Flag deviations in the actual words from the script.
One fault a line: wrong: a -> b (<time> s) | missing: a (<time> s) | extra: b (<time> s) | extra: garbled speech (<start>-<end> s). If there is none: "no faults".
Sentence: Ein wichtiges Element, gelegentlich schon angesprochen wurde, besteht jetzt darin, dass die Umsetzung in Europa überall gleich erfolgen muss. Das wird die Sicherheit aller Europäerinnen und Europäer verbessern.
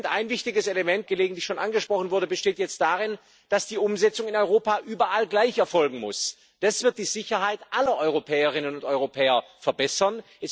no faults